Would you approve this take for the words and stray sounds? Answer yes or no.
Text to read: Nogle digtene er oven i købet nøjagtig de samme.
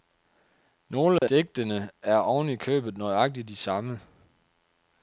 no